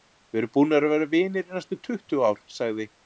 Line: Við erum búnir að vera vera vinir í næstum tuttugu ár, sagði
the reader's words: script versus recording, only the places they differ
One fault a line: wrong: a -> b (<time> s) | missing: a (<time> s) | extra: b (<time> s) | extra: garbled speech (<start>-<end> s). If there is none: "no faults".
missing: vera (1.1 s)